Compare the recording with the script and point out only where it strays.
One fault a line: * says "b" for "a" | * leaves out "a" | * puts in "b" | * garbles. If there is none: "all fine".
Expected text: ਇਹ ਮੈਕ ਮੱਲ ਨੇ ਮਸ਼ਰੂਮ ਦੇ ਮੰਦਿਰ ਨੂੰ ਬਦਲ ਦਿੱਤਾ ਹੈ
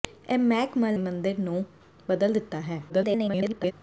* leaves out "ਨੇ ਮਸ਼ਰੂਮ ਦੇ"
* garbles